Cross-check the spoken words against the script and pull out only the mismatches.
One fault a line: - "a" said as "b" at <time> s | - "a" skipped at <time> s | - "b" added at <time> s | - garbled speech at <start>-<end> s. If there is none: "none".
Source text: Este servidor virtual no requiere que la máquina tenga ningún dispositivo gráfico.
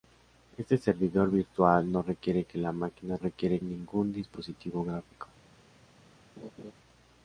- "tenga" said as "requiere" at 3.2 s